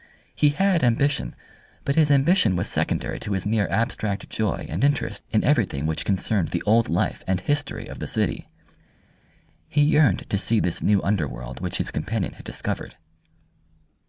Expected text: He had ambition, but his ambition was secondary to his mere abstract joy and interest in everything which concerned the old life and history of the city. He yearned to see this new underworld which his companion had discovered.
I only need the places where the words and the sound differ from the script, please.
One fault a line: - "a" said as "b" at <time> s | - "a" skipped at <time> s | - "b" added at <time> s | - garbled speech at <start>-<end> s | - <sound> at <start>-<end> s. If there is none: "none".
none